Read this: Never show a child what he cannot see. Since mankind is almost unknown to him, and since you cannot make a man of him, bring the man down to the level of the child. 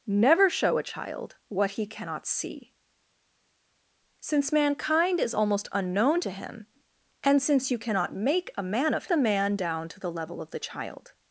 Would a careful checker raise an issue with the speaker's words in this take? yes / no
yes